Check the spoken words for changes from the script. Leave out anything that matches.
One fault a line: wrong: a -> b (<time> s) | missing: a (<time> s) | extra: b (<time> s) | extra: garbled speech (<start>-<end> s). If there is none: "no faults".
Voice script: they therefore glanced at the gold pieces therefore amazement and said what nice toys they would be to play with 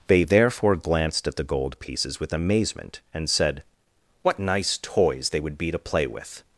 wrong: therefore -> with (2.2 s)